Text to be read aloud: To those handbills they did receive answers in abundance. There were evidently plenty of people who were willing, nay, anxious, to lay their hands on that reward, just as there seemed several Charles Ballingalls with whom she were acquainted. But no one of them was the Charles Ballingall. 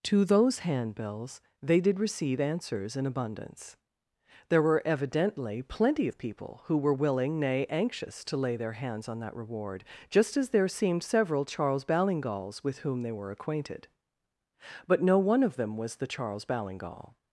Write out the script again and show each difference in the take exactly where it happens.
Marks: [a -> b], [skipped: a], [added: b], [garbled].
To those handbills they did receive answers in abundance. There were evidently plenty of people who were willing, nay, anxious, to lay their hands on that reward, just as there seemed several Charles Ballingalls with whom [she -> they] were acquainted. But no one of them was the Charles Ballingall.